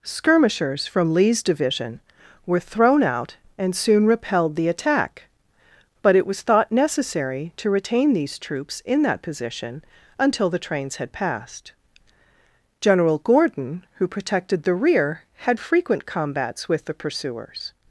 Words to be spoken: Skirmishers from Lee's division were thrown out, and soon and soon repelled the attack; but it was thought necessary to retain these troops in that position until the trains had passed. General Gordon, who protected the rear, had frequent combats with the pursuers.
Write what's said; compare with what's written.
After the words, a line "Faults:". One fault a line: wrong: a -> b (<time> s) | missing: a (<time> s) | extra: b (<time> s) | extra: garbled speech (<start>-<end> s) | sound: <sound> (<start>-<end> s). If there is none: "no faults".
Skirmishers from Lee's division were thrown out, and soon repelled the attack; but it was thought necessary to retain these troops in that position until the trains had passed. General Gordon, who protected the rear, had frequent combats with the pursuers.
Faults:
missing: and soon (4.1 s)